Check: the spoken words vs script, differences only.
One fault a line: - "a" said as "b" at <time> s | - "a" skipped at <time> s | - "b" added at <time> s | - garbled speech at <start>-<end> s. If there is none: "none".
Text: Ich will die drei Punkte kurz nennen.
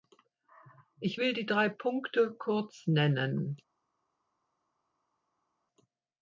none